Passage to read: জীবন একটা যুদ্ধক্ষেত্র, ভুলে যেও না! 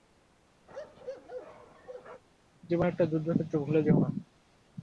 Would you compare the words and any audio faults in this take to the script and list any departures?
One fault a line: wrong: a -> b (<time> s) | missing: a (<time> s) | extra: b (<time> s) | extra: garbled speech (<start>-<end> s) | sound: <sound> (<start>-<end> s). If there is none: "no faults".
sound: bark (0.7-2.2 s)